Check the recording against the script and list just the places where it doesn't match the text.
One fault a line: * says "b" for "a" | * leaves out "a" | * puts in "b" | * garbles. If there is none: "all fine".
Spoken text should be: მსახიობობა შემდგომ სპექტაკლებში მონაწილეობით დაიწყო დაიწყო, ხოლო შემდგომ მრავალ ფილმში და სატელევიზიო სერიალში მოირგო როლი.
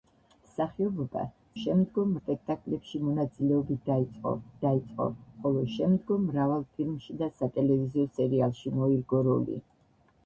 all fine